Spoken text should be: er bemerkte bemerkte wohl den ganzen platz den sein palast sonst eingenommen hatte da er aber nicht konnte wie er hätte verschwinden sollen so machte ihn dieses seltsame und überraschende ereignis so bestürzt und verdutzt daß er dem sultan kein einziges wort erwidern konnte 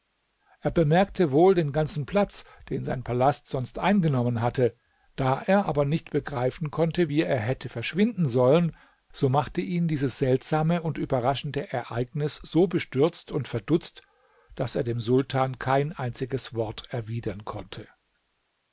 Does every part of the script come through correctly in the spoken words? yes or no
no